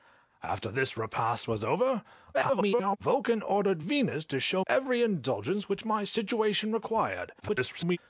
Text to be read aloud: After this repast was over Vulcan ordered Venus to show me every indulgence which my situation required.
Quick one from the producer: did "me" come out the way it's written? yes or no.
no